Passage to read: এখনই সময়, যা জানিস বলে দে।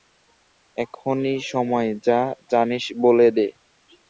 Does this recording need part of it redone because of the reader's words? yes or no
no